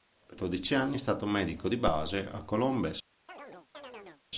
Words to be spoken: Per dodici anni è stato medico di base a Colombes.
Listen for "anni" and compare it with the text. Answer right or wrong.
right